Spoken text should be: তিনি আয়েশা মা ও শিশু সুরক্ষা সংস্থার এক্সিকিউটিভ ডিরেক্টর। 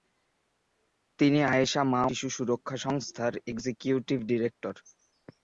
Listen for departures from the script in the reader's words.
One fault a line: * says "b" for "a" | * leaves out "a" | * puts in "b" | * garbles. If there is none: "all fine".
* leaves out "ও"